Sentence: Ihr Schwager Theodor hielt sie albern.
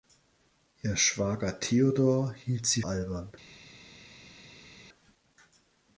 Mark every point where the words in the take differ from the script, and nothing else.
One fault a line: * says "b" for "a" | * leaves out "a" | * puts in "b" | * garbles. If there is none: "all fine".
all fine